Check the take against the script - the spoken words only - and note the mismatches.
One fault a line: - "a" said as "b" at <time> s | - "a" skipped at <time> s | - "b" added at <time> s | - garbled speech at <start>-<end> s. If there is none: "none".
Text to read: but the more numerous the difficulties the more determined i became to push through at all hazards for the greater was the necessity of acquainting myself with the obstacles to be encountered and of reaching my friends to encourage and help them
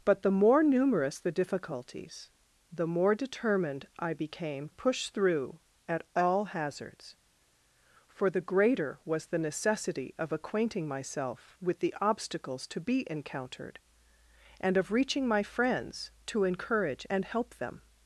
- "to" skipped at 4.7 s